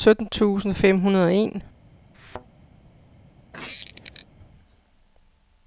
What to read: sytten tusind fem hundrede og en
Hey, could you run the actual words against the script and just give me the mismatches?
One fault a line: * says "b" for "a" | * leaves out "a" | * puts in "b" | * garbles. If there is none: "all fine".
all fine